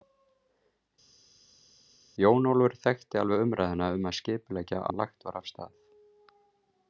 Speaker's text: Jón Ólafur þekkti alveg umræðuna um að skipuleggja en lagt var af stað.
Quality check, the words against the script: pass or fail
pass